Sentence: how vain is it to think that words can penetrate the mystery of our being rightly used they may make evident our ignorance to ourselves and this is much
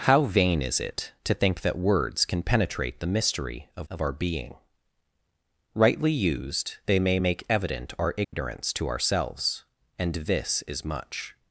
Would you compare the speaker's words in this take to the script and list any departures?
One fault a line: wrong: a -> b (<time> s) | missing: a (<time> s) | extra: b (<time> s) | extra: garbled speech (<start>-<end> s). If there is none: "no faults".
extra: of (3.9 s)